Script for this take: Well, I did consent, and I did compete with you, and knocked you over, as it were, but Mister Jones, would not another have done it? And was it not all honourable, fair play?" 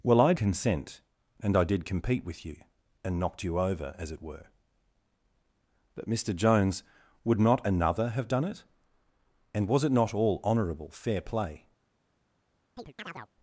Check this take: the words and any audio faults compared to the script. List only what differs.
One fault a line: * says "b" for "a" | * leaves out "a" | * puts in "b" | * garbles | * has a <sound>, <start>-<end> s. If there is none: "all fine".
* leaves out "did"
* has a chirp, 12.8-13.3 s